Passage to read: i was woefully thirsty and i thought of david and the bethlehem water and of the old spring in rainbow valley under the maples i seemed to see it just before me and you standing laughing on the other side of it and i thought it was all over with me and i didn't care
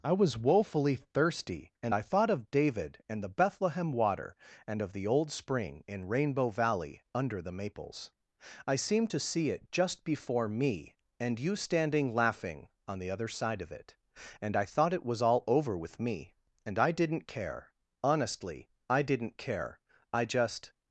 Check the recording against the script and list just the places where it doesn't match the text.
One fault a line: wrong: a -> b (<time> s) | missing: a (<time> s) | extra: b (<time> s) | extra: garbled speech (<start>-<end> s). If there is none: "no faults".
extra: honestly i didn't care i just (18.0 s)